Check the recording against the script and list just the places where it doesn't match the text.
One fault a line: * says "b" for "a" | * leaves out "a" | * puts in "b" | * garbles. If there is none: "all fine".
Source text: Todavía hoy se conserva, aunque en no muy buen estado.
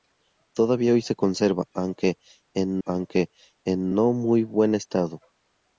* puts in "aunque en"